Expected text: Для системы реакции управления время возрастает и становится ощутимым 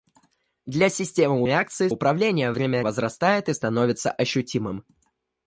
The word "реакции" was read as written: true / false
true